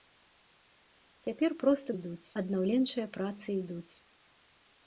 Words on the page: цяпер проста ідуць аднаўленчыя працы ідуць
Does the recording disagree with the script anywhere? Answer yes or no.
no